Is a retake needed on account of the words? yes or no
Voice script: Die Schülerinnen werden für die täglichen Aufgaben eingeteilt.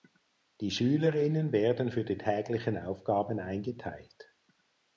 no